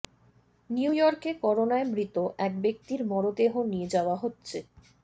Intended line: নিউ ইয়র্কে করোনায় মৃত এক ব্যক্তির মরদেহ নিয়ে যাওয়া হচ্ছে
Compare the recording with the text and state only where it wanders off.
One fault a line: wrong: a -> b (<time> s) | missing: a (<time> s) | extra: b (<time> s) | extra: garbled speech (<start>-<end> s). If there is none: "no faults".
no faults